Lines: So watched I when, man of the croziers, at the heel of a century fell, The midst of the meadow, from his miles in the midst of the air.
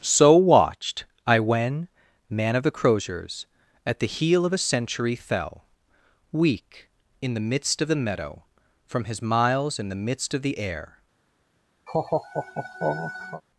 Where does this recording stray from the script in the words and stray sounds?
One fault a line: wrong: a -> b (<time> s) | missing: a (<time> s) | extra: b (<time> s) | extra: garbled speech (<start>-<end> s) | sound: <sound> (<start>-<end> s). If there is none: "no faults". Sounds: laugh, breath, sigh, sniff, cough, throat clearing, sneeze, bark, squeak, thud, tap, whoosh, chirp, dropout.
extra: Weak in (6.3 s)
sound: laugh (11.9-13.4 s)